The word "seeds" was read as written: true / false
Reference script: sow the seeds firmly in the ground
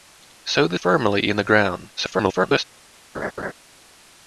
false